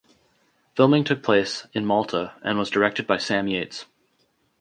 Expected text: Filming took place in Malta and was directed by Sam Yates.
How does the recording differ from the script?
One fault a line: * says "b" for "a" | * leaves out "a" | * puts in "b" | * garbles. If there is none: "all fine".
all fine